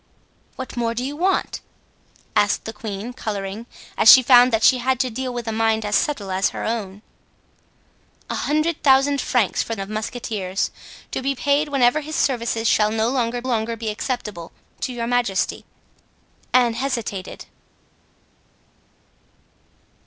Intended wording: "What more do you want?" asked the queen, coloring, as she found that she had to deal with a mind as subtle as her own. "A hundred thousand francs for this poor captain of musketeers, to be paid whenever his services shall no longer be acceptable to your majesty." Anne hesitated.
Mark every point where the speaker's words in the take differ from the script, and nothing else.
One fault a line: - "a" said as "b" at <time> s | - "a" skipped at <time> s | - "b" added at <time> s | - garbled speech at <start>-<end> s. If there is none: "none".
- "this poor captain" skipped at 9.8 s
- "longer" added at 13.4 s